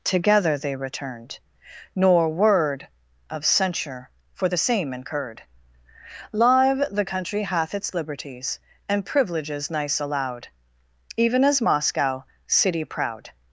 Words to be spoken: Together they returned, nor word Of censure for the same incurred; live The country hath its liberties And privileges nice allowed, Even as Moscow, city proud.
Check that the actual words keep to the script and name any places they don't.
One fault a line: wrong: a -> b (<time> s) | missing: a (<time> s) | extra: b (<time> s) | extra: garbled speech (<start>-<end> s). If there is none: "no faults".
no faults